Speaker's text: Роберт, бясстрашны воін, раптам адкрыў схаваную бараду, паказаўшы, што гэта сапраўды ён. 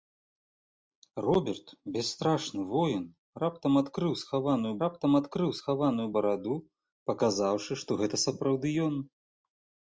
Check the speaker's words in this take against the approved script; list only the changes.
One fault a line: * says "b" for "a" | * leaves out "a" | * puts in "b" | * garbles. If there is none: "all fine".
* puts in "раптам адкрыў схаваную"